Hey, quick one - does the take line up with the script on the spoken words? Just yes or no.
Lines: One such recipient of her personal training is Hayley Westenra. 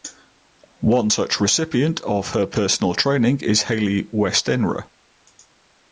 yes